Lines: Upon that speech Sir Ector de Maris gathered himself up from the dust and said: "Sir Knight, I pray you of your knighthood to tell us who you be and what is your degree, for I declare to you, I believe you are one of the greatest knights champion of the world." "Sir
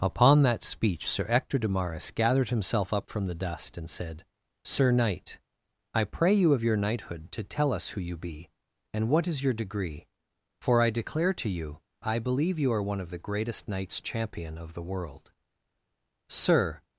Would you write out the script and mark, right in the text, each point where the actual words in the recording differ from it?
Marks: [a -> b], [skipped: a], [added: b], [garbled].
Upon that speech Sir Ector de Maris gathered himself up from the dust and said: "Sir Knight, I pray you of your knighthood to tell us who you be and what is your degree, for I declare to you, I believe you are one of the greatest knights champion of the world." "Sir